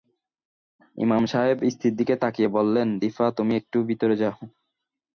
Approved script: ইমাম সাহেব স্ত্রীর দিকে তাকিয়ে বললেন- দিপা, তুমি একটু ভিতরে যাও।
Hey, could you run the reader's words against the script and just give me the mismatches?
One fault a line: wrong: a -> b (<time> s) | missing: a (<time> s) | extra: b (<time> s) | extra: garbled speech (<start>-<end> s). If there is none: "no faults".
no faults